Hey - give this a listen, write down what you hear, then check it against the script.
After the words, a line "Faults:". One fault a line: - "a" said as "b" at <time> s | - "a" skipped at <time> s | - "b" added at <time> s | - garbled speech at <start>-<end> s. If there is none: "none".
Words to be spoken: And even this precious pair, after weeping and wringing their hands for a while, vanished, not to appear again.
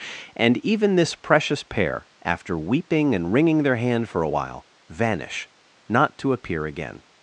And even this precious pair, after weeping and wringing their hand for a while, vanish, not to appear again.
Faults:
- "hands" said as "hand" at 3.8 s
- "vanished" said as "vanish" at 4.9 s